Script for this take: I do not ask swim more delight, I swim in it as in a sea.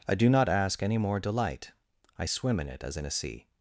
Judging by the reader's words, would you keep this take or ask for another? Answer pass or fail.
fail